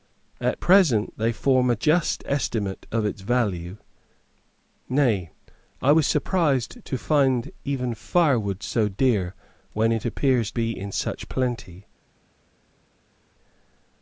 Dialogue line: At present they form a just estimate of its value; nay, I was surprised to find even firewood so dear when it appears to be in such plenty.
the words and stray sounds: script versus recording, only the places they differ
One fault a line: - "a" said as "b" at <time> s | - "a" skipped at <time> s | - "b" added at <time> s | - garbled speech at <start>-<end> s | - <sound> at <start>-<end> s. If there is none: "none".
- "to" skipped at 10.5 s